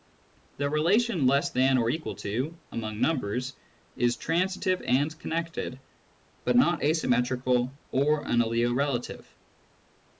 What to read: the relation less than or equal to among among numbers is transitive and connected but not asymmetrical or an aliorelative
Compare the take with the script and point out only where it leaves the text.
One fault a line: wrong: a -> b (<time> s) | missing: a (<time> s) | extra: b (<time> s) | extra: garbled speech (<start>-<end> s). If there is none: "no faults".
missing: among (3.0 s)